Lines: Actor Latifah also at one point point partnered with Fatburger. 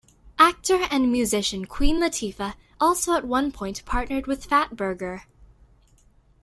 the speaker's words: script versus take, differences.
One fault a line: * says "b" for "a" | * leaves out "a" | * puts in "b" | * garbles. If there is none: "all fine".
* puts in "and musician Queen"
* leaves out "point"